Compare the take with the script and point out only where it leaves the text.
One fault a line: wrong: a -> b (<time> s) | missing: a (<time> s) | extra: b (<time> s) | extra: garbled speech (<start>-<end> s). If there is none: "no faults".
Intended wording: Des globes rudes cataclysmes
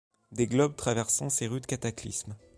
extra: traversant ces (0.8 s)